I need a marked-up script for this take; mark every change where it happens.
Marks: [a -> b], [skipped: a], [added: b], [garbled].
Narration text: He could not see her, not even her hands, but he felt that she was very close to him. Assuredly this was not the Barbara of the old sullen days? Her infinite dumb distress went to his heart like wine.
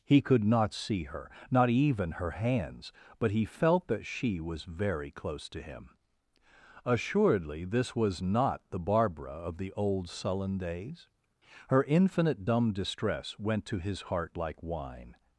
He could not see her, not even her hands, but he felt that she was very close to him. Assuredly this was not the Barbara of the old sullen days? Her infinite dumb distress went to his heart like wine.